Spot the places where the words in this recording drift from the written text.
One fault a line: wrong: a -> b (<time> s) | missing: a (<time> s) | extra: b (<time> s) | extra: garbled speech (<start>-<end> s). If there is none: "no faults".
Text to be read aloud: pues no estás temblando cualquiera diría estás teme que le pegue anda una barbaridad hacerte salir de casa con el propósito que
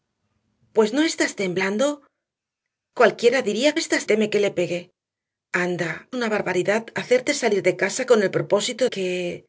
no faults